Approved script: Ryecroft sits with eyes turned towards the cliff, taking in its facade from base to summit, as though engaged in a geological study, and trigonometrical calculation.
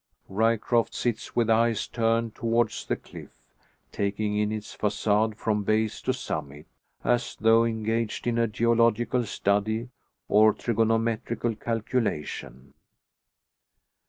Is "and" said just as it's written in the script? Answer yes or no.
no